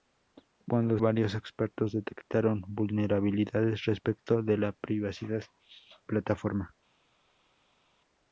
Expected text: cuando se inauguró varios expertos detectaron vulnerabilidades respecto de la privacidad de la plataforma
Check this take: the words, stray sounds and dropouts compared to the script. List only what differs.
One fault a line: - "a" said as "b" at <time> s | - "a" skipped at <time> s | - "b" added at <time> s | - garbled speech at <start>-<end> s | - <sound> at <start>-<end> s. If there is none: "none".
- "se inauguró" skipped at 1.0 s
- "de la" skipped at 5.4 s